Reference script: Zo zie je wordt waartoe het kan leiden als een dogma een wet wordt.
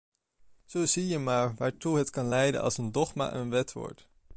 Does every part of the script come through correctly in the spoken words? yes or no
no